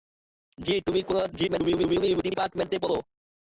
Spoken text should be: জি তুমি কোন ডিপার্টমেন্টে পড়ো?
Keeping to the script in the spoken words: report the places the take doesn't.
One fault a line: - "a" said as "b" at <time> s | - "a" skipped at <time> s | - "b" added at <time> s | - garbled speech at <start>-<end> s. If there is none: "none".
- garbled speech at 1.3-2.2 s